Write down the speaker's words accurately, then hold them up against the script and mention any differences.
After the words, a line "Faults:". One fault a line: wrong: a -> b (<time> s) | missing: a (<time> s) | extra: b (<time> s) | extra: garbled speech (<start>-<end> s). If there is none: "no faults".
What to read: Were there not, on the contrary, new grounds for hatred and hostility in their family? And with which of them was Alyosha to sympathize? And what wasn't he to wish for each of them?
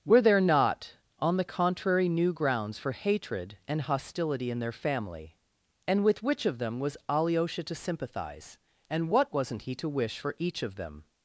Were there not, on the contrary, new grounds for hatred and hostility in their family? And with which of them was Alyosha to sympathize? And what wasn't he to wish for each of them?
Faults:
no faults